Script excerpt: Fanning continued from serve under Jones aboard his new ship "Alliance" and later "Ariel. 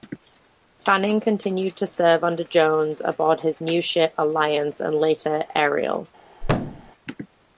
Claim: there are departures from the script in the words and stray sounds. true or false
true